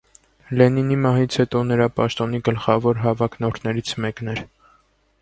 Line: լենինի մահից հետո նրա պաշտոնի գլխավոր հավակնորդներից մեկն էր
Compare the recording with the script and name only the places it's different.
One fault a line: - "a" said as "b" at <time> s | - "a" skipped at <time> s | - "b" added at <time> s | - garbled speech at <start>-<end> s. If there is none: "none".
none